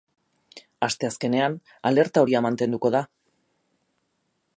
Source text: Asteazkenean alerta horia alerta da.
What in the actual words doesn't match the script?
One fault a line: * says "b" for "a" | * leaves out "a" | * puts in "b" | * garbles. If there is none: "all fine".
* says "mantenduko" for "alerta"